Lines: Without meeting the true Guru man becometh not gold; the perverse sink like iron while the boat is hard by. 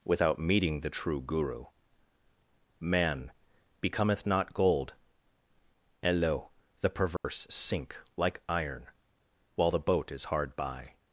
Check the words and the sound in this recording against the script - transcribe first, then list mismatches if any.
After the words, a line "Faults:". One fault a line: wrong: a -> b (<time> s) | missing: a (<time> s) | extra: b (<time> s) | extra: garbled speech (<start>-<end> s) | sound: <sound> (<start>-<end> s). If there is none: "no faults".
Without meeting the true Guru man becometh not gold; and lo the perverse sink like iron while the boat is hard by.
Faults:
extra: and lo (6.0 s)
sound: dropout (7.2-7.2 s)